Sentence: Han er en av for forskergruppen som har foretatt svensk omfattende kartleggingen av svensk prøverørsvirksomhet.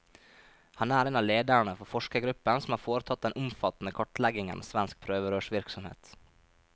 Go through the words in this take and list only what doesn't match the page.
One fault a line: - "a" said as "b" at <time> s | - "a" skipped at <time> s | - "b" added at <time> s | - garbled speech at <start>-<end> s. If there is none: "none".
- "lederne" added at 1.2 s
- "svensk" said as "den" at 3.3 s